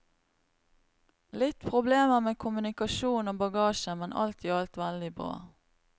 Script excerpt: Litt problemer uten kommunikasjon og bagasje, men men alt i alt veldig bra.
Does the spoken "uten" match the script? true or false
false